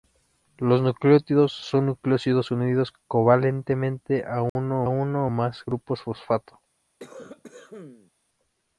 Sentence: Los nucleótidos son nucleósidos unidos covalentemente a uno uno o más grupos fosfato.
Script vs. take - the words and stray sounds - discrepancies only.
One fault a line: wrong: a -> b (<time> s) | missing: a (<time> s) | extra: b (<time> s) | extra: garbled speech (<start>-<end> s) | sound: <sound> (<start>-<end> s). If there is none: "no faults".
sound: dropout (4.5-4.6 s)
sound: cough (7.0-8.1 s)